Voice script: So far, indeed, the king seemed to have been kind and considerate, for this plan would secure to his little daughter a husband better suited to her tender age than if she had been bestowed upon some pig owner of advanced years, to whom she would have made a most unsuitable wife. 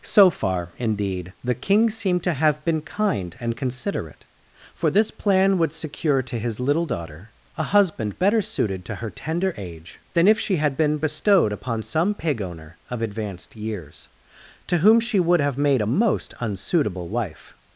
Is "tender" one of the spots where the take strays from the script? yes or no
no